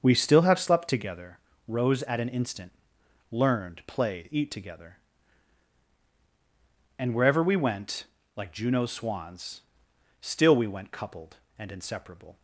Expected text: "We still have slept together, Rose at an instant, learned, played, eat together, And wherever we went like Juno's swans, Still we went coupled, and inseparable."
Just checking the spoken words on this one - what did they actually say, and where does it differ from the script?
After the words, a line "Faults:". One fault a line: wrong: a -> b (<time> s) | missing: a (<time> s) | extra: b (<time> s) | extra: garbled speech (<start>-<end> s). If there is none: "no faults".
"We still have slept together, Rose at an instant, learned, played, eat together, And wherever we went like Juno's swans, Still we went coupled, and inseparable."
Faults:
no faults